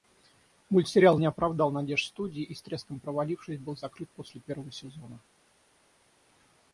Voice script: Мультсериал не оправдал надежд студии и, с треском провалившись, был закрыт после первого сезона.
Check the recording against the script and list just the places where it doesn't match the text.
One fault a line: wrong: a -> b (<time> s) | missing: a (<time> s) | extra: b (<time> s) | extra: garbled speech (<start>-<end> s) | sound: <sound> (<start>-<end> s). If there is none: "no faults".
no faults